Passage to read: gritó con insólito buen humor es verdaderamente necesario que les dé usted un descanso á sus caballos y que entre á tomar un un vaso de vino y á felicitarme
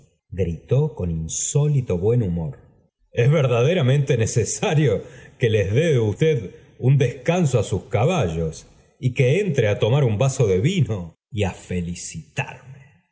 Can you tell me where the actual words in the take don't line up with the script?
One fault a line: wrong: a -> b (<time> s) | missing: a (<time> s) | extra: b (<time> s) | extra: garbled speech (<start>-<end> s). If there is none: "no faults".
missing: un (10.2 s)